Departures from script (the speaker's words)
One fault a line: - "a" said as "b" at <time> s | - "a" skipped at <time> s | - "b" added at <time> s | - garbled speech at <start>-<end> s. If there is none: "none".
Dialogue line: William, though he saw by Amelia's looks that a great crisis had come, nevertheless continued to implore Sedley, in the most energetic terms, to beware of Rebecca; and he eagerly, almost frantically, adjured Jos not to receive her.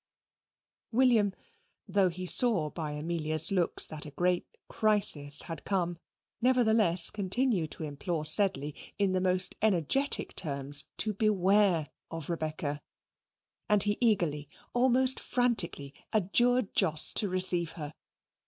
- "not" skipped at 17.1 s